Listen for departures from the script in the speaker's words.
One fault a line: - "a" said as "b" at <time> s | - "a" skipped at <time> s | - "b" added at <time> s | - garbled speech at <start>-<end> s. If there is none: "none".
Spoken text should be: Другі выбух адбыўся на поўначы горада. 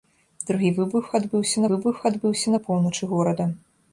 - "выбух адбыўся" added at 1.7 s